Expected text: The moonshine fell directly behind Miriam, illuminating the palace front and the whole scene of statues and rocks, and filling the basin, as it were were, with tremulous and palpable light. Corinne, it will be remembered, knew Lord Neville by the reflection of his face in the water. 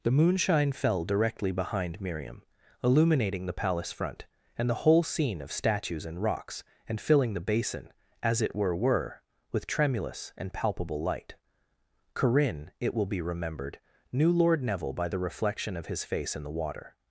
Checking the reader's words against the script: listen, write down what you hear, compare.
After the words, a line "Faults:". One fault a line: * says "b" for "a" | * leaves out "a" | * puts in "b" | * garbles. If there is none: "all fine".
The moonshine fell directly behind Miriam, illuminating the palace front and the whole scene of statues and rocks, and filling the basin, as it were were, with tremulous and palpable light. Corinne, it will be remembered, knew Lord Neville by the reflection of his face in the water.
Faults:
all fine